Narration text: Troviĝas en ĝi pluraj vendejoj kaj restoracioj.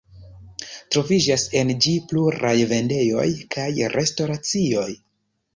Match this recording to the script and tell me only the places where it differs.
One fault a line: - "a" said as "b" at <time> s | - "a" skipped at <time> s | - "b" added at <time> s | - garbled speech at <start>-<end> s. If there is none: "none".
none